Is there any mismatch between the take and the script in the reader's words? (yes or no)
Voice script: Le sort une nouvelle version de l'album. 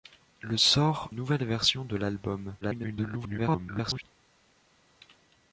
yes